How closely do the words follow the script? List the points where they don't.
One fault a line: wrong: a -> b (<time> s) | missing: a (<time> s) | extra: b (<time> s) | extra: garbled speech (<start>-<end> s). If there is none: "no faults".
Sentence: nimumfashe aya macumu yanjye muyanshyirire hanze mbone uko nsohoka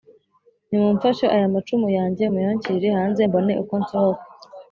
no faults